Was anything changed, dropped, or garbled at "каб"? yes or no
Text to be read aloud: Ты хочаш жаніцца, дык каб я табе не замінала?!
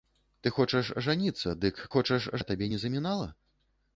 yes